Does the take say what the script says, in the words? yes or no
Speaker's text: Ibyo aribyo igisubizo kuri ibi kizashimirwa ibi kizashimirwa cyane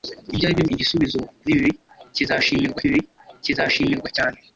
yes